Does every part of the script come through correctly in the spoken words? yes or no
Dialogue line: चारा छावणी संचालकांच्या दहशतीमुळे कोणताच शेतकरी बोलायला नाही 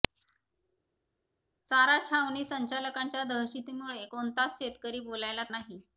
yes